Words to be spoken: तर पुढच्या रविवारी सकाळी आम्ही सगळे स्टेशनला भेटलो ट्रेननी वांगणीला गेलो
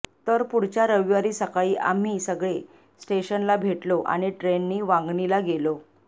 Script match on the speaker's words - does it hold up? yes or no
no